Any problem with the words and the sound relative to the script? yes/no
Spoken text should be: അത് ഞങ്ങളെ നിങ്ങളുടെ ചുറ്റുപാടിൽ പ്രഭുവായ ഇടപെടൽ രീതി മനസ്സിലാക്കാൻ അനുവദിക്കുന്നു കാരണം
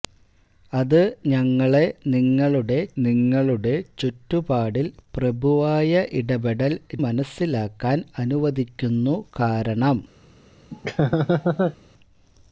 yes